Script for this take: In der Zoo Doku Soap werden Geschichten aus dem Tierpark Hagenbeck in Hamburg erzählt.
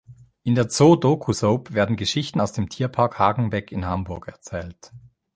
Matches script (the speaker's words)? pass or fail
pass